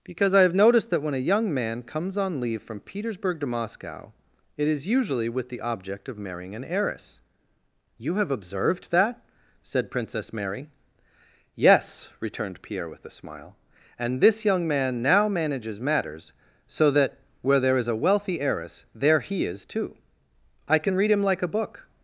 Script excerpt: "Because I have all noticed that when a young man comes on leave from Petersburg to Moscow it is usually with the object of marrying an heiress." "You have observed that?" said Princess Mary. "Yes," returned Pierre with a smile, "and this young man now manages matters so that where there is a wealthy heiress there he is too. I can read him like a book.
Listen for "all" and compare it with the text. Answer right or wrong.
wrong